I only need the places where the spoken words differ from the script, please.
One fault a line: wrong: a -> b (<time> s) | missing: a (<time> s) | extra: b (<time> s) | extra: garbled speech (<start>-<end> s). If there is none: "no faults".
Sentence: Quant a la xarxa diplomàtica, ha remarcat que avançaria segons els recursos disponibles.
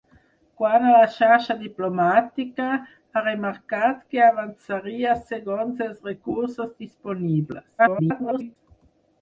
extra: garbled speech (7.8-8.6 s)